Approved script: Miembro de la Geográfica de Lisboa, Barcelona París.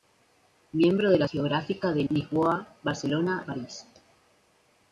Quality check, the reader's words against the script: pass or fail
pass